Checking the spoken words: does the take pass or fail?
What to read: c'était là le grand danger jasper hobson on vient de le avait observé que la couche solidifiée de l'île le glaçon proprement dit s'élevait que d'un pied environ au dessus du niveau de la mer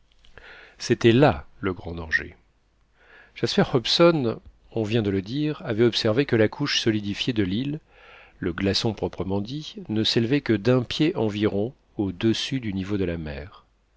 fail